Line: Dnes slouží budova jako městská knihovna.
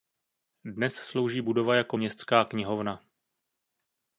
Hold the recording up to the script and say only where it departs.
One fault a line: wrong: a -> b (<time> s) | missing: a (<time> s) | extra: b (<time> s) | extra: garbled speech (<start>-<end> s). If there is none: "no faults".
no faults